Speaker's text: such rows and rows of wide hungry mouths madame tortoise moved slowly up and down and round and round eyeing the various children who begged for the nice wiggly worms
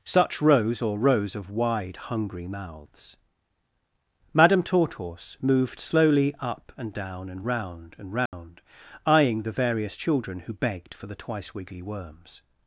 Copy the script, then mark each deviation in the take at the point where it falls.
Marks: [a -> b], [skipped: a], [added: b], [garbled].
such rows [and -> or] rows of wide hungry mouths madame tortoise moved slowly up and down and round and round eyeing the various children who begged for the [nice -> twice] wiggly worms